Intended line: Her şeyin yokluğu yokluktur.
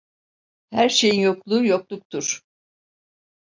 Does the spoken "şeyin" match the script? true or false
true